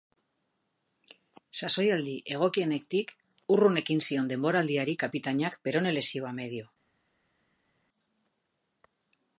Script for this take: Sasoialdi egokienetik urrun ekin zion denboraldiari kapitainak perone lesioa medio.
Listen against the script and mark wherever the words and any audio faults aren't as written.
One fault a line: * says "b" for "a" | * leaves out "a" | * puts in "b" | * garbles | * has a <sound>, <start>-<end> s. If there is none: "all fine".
all fine